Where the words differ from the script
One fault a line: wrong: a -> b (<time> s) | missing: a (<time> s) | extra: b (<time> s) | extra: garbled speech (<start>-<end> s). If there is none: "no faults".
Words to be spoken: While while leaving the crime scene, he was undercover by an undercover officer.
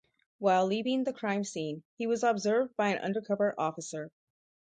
missing: while (0.7 s)
wrong: undercover -> observed (2.2 s)